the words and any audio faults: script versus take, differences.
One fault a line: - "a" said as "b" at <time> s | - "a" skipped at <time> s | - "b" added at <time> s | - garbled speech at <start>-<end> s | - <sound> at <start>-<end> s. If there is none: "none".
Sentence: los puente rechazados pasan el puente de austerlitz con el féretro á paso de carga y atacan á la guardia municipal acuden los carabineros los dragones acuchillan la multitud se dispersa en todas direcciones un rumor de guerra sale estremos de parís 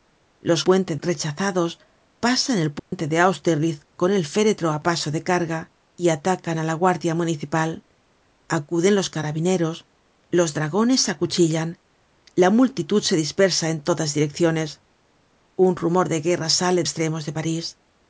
- dropout at 2.8-2.9 s